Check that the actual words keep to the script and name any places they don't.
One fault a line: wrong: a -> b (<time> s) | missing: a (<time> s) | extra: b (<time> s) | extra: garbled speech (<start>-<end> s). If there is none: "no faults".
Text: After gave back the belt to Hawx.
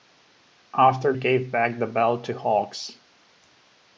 no faults